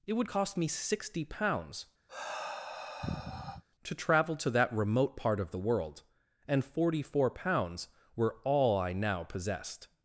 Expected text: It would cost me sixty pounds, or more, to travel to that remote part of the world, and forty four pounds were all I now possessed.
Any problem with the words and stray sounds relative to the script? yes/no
yes